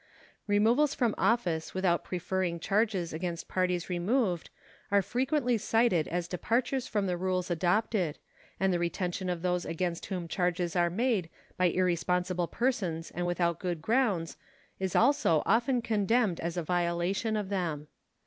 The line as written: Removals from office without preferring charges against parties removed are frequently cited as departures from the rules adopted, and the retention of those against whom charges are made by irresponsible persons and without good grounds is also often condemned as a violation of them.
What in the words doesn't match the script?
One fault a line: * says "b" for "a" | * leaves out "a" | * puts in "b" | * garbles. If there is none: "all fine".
all fine